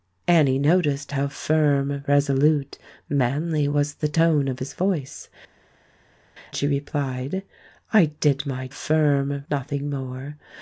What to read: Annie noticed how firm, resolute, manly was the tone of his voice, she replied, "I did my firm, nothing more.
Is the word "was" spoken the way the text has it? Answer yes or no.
yes